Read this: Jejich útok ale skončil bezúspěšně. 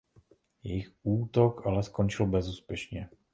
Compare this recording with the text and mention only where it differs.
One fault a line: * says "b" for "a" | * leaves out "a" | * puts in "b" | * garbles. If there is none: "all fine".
all fine